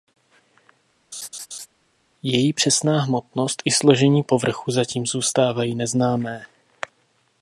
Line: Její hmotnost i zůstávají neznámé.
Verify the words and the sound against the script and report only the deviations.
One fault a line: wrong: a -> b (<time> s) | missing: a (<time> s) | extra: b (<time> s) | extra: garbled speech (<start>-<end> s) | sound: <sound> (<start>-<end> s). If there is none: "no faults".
sound: laugh (1.1-1.7 s)
extra: přesná (2.5 s)
extra: složení povrchu zatím (3.7 s)